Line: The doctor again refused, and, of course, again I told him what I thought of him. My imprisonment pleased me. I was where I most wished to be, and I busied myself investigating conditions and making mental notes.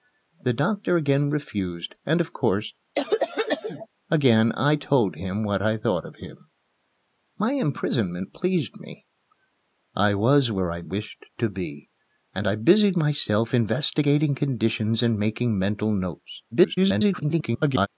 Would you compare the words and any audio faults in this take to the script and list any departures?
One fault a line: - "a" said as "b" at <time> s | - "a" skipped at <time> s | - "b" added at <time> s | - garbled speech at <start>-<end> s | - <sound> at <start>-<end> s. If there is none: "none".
- cough at 2.9-3.9 s
- "most" skipped at 10.8 s
- garbled speech at 16.5-17.9 s